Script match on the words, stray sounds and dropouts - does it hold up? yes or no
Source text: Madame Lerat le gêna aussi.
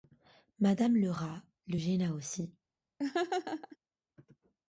no